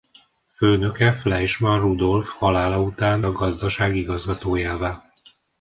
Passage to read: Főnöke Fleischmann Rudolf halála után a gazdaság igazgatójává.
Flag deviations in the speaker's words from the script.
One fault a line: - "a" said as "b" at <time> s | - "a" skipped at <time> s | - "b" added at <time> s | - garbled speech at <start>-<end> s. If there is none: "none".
none